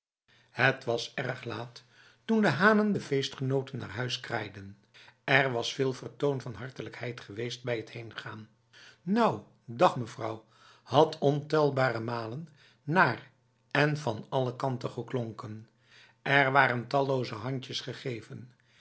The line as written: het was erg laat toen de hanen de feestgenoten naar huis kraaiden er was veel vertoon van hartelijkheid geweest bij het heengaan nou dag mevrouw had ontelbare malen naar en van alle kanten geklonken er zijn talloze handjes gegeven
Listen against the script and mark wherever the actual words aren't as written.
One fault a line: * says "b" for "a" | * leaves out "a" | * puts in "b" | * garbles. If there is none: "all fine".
* says "waren" for "zijn"